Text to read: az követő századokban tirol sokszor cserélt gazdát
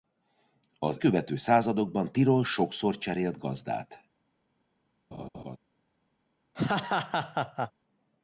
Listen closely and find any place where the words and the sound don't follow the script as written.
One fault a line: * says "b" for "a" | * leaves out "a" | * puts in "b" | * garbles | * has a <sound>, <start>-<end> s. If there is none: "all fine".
* has a laugh, 5.1-5.6 s
* has a laugh, 6.5-7.7 s